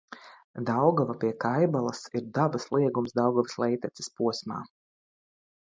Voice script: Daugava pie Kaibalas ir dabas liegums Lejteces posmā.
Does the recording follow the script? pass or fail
fail